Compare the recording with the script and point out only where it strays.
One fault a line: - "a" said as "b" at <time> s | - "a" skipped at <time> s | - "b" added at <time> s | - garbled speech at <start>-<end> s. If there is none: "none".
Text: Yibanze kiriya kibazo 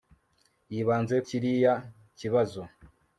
none